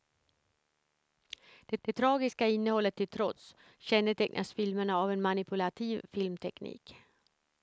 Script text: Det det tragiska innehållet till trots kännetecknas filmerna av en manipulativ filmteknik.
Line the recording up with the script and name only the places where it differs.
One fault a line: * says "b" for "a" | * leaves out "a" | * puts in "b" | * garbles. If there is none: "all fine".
all fine